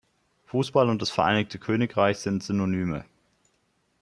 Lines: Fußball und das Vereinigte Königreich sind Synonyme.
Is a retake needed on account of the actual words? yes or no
no